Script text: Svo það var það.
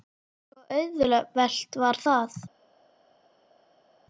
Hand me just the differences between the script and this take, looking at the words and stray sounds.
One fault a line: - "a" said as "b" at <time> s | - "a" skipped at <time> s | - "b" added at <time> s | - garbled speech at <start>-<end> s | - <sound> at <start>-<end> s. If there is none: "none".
- "það" said as "auðvelt" at 0.8 s